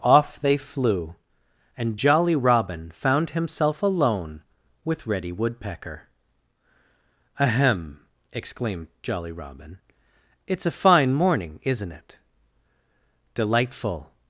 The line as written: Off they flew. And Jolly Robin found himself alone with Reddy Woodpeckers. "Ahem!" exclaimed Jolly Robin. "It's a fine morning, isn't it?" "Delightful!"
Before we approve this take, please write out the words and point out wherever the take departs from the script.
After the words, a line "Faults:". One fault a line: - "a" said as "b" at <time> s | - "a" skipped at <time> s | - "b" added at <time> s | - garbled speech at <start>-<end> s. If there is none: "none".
Off they flew. And Jolly Robin found himself alone with Reddy Woodpecker. "Ahem!" exclaimed Jolly Robin. "It's a fine morning, isn't it?" "Delightful!"
Faults:
- "Woodpeckers" said as "Woodpecker" at 5.3 s